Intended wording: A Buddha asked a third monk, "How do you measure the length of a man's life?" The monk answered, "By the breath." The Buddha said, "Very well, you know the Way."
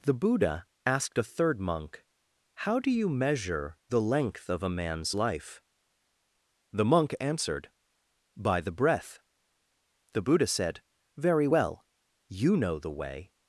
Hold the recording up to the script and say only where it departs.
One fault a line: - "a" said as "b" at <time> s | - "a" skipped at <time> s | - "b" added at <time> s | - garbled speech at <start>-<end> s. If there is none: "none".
- "A" said as "The" at 0.0 s